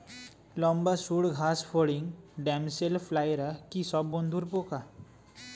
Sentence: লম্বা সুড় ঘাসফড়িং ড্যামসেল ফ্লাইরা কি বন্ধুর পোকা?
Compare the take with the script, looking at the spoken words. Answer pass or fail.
fail